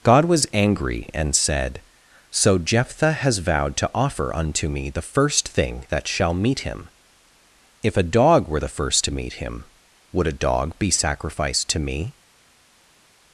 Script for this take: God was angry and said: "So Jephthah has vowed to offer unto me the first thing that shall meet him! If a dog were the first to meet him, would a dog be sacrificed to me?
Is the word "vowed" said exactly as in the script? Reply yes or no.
yes